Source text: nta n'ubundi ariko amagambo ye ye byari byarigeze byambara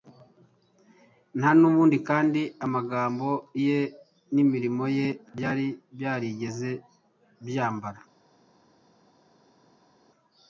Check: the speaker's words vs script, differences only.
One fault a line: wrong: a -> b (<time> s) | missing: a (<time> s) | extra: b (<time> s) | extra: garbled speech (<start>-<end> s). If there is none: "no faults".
wrong: ariko -> kandi (2.1 s)
extra: n'imirimo (4.3 s)